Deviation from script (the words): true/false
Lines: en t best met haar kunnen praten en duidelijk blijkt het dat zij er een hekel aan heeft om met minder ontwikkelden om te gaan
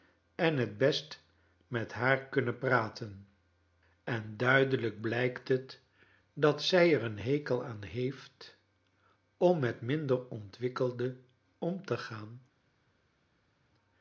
false